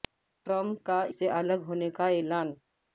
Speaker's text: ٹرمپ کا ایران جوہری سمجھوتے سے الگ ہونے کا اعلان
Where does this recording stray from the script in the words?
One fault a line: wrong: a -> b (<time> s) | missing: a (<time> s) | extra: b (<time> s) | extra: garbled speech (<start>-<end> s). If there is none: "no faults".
missing: ایران جوہری سمجھوتے (1.0 s)